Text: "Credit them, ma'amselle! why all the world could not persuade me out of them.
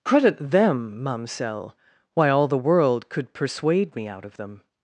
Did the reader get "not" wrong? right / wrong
wrong